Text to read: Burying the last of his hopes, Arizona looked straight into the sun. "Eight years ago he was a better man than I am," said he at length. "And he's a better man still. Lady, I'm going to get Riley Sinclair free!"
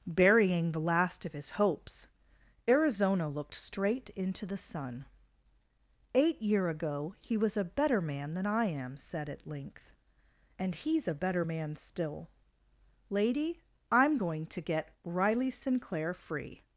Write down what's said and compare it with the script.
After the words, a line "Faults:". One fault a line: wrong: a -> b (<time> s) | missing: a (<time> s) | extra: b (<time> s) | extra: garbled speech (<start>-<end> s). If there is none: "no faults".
Burying the last of his hopes, Arizona looked straight into the sun. "Eight year ago he was a better man than I am," said at length. "And he's a better man still. Lady, I'm going to get Riley Sinclair free!"
Faults:
wrong: years -> year (6.4 s)
missing: he (9.3 s)